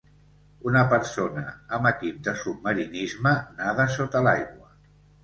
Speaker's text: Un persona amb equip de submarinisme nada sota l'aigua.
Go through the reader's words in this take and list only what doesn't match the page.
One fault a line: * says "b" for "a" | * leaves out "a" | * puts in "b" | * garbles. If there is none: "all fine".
* says "Una" for "Un"